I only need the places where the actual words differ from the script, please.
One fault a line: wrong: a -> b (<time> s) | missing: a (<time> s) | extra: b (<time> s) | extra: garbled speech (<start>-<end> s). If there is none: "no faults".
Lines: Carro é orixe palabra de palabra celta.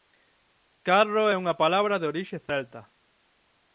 wrong: orixe -> unha (1.4 s)
wrong: palabra -> orixe (2.1 s)